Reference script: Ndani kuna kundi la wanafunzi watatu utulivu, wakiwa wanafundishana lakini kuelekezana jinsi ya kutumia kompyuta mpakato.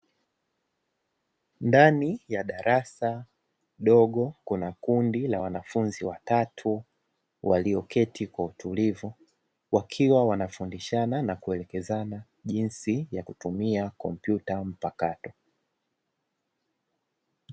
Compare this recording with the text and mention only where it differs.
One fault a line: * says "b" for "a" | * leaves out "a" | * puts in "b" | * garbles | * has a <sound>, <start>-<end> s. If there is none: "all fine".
* puts in "ya darasa dogo"
* puts in "walioketi kwa"
* says "na" for "lakini"